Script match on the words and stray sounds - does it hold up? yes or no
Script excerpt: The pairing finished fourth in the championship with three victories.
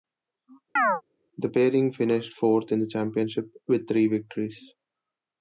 no